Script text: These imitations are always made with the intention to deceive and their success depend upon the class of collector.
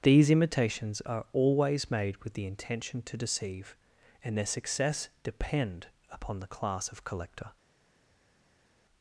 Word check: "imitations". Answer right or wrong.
right